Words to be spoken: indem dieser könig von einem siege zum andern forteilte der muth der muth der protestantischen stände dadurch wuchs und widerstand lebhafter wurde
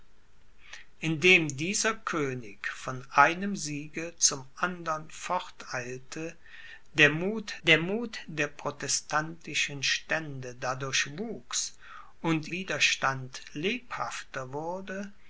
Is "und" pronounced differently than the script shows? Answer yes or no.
no